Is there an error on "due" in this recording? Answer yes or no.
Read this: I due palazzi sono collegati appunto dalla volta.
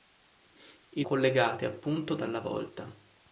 yes